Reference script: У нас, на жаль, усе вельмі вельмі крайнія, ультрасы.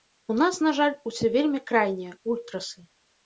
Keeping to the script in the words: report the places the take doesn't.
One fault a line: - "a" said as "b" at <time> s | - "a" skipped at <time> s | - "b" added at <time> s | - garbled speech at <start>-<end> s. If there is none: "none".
- "вельмі" skipped at 1.6 s